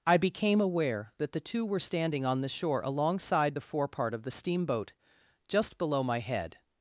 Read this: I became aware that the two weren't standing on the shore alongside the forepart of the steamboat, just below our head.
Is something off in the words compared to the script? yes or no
yes